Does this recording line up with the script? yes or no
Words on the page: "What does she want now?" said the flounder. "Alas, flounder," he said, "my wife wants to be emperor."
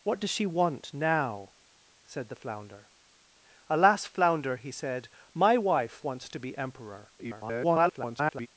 no